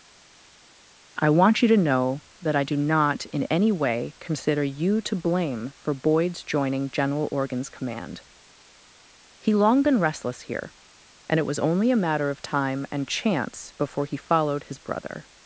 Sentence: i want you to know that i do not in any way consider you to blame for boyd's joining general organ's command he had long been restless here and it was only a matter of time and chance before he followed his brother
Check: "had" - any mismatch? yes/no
yes